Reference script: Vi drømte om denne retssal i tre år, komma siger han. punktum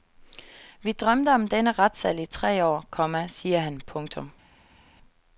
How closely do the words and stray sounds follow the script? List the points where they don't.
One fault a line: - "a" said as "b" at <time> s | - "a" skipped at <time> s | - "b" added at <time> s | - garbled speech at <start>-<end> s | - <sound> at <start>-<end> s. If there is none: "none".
none